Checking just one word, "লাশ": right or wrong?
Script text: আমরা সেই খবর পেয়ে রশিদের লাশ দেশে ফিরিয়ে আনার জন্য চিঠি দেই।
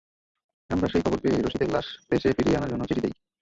right